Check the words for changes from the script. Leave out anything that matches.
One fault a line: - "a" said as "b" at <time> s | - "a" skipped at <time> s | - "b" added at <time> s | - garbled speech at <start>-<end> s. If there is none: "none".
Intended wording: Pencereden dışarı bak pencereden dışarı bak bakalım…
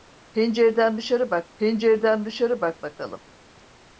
none